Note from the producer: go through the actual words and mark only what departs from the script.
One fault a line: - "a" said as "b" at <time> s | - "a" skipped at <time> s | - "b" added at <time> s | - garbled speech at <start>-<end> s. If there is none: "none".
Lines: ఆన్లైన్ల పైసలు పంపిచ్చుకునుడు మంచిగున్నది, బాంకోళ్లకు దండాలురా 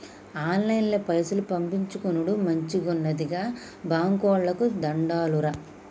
- "గా" added at 3.3 s